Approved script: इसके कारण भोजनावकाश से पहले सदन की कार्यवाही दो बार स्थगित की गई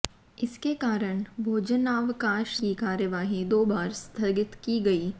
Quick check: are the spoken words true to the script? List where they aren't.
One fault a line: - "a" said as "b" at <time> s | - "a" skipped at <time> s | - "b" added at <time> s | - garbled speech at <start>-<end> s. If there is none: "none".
- "से पहले सदन" skipped at 2.5 s